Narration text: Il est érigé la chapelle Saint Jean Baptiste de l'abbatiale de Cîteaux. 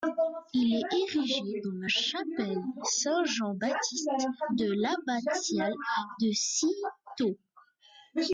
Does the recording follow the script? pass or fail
fail